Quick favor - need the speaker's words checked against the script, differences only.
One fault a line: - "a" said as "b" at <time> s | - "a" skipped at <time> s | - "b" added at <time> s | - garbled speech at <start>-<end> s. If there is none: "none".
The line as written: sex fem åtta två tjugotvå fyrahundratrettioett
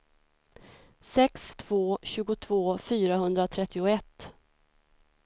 - "fem åtta" skipped at 1.5 s